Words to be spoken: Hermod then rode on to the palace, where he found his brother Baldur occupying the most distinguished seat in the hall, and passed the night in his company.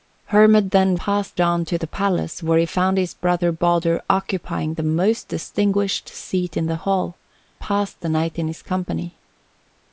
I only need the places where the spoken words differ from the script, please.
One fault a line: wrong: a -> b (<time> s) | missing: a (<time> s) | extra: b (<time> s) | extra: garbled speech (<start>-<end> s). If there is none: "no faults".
wrong: rode -> passed (1.0 s)
missing: and (7.2 s)